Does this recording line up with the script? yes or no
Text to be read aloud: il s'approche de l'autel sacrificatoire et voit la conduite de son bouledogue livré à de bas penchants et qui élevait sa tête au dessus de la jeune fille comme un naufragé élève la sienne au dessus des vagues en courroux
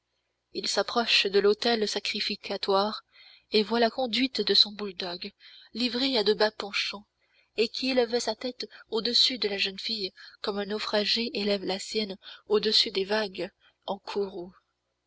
yes